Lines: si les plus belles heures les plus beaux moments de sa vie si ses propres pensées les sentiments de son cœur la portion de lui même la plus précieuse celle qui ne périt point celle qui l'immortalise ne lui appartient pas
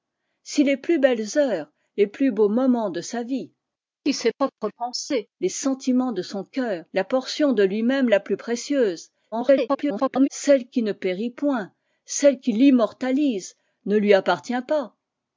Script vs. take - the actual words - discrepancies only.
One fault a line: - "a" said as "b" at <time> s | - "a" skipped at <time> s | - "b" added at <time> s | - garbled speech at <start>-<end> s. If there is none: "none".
- garbled speech at 9.3-10.3 s